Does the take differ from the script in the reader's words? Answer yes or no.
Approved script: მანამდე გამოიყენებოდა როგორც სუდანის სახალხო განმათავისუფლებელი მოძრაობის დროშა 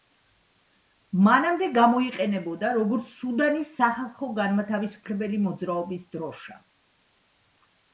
no